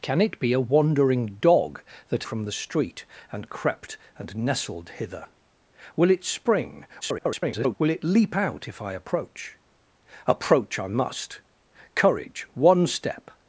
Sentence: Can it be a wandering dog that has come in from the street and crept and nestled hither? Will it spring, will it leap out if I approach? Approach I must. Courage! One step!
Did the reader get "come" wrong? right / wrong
wrong